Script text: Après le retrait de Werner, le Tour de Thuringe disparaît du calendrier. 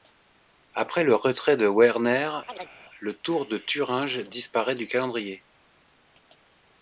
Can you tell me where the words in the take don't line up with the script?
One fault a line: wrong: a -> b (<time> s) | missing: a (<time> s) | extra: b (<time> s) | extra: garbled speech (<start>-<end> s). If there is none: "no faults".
no faults